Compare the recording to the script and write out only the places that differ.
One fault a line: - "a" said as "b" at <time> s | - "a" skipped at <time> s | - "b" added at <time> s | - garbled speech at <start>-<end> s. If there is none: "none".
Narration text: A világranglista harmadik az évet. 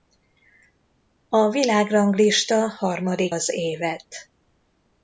none